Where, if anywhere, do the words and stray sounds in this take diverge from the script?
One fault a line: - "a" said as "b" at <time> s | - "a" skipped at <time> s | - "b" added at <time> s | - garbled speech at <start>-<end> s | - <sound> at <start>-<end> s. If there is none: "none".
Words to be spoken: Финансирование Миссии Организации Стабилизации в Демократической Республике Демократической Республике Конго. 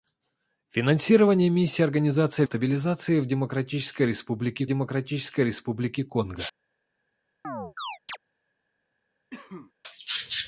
- chirp at 7.4-8.2 s
- cough at 9.3-9.7 s